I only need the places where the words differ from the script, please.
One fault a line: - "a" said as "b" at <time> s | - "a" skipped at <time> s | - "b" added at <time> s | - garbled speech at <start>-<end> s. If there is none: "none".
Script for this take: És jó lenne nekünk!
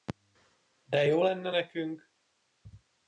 - "És" said as "De" at 0.8 s